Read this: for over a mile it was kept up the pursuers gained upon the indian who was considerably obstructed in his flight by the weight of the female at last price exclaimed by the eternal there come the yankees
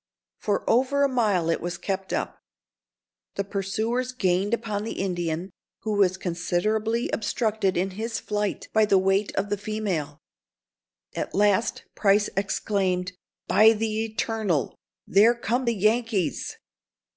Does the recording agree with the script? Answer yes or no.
yes